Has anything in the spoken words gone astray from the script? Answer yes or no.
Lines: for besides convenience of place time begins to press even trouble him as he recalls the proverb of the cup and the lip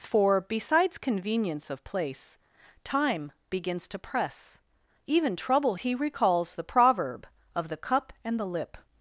yes